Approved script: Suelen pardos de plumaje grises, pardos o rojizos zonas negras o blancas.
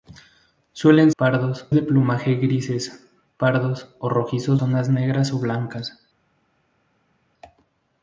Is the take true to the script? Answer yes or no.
yes